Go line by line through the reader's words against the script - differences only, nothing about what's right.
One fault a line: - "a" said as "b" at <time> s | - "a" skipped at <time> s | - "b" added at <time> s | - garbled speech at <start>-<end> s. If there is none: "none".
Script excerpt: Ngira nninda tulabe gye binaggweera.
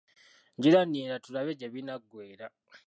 none